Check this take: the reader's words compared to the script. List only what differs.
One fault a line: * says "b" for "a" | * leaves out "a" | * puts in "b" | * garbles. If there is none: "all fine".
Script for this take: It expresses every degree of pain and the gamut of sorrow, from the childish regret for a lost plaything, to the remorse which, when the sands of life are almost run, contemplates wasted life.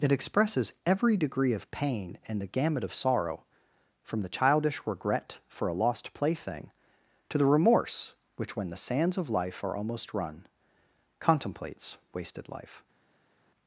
all fine